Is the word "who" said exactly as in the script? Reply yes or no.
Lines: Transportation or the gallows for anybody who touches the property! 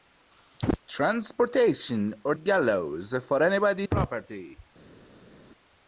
no